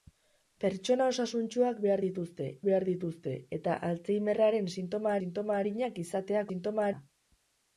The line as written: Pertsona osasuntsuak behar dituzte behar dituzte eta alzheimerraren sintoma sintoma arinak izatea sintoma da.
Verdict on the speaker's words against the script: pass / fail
pass